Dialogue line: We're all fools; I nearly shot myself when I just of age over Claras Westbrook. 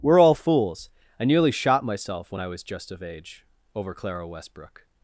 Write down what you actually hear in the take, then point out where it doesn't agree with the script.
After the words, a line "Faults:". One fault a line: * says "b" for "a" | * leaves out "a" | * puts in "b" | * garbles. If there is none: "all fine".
We're all fools; I nearly shot myself when I was just of age over Clara Westbrook.
Faults:
* puts in "was"
* says "Clara" for "Claras"